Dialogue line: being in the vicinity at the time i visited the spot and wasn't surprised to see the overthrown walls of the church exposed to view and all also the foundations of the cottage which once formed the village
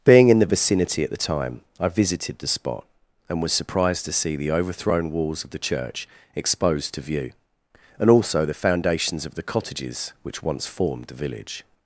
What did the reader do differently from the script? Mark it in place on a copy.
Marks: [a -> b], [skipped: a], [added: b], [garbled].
being in the vicinity at the time i visited the spot and [wasn't -> was] surprised to see the overthrown walls of the church exposed to view and [skipped: all] also the foundations of the [cottage -> cottages] which once formed the village